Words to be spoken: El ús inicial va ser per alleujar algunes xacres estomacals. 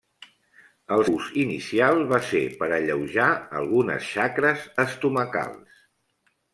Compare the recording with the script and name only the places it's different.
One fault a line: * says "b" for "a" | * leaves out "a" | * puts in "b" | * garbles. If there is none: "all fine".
all fine